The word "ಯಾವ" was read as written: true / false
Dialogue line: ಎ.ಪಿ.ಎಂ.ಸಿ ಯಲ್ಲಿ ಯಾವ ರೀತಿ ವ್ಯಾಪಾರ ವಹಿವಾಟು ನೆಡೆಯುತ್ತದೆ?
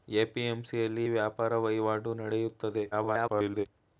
false